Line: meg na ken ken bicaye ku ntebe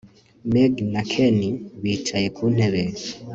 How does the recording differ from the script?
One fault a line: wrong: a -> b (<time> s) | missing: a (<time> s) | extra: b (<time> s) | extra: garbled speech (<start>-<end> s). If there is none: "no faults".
missing: ken (1.4 s)